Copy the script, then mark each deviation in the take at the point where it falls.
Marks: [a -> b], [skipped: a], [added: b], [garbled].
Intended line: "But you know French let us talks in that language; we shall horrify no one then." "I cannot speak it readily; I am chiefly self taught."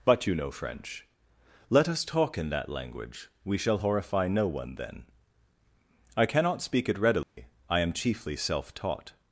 "But you know French let us [talks -> talk] in that language; we shall horrify no one then." "I cannot speak it readily; I am chiefly self taught."